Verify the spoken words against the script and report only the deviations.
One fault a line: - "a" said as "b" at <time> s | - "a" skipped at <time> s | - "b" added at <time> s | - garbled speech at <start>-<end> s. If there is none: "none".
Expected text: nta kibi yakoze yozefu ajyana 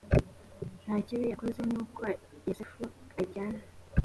- "nuko" added at 1.7 s